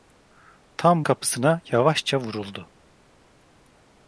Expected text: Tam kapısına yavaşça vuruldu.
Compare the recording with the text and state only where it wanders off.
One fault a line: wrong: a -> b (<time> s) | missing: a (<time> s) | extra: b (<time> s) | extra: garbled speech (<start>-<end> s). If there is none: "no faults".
no faults